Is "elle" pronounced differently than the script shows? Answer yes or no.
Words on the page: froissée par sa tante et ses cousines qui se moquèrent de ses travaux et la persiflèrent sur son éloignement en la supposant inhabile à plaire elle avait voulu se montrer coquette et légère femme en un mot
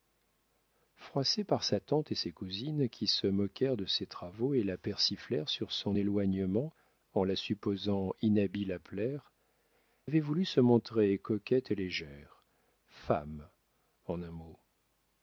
yes